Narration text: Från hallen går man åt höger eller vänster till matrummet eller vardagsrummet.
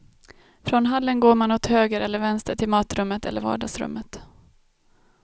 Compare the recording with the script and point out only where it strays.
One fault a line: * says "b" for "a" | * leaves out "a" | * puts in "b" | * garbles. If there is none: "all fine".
all fine